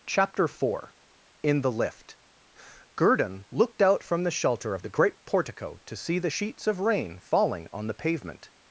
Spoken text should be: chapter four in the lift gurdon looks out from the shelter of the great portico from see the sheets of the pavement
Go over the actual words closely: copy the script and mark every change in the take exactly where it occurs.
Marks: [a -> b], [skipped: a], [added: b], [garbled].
chapter four in the lift gurdon [looks -> looked] out from the shelter of the great portico [from -> to] see the sheets of [added: rain falling on] the pavement